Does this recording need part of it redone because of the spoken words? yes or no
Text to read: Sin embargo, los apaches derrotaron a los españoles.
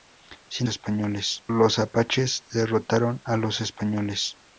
yes